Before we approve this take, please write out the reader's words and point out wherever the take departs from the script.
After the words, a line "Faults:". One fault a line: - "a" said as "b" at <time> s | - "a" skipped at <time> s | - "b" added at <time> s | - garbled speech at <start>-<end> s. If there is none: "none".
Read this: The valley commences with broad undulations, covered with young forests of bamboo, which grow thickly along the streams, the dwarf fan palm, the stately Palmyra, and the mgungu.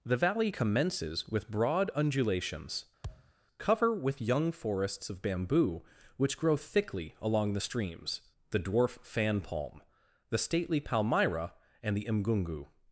The valley commences with broad undulations, cover with young forests of bamboo, which grow thickly along the streams, the dwarf fan palm, the stately Palmyra, and the mgungu.
Faults:
- "covered" said as "cover" at 3.6 s